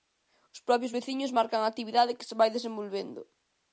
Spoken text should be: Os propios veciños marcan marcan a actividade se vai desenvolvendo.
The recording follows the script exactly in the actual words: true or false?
false